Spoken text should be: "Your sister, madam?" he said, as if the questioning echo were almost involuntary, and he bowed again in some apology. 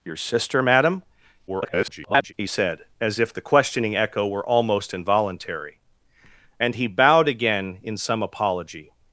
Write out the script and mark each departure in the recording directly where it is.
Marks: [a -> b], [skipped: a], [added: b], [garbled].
"Your sister, madam?" [garbled] he said, as if the questioning echo were almost involuntary, and he bowed again in some apology.